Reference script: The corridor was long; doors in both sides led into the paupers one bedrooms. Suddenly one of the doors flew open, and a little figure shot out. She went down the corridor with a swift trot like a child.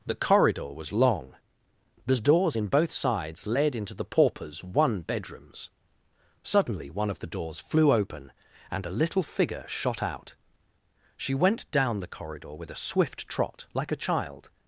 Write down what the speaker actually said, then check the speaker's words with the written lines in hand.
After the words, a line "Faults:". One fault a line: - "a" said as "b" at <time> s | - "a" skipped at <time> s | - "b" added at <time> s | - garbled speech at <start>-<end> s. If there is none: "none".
The corridor was long; the doors in both sides led into the paupers one bedrooms. Suddenly one of the doors flew open, and a little figure shot out. She went down the corridor with a swift trot like a child.
Faults:
- "the" added at 2.1 s